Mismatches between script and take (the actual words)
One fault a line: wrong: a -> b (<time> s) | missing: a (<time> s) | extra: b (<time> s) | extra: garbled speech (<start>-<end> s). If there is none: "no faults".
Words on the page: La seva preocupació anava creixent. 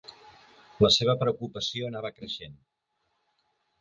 no faults